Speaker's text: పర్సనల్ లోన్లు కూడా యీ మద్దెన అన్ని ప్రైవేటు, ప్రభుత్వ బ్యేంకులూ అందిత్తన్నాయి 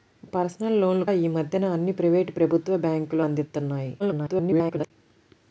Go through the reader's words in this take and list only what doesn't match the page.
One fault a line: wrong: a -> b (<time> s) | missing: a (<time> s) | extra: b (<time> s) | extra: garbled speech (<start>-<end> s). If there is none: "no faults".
missing: కూడా (1.1 s)
extra: garbled speech (4.0-4.9 s)